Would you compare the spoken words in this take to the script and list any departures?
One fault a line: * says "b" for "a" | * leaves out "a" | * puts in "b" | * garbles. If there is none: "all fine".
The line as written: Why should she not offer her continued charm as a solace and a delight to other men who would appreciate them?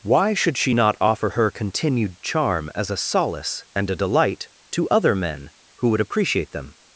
all fine